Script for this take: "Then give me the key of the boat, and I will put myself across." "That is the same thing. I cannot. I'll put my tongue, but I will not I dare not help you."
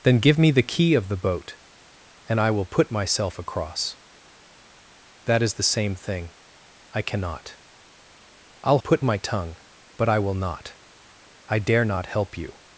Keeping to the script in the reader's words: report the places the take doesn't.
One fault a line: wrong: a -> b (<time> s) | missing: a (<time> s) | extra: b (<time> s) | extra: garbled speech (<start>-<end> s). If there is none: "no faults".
no faults